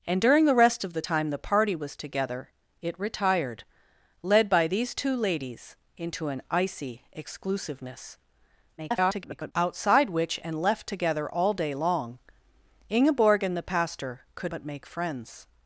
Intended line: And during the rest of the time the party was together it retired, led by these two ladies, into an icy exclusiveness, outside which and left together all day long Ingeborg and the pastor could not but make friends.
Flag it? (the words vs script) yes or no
yes